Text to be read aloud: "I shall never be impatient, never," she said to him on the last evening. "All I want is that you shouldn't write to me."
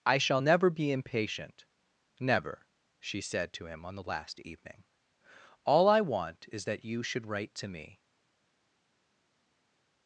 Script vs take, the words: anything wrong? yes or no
yes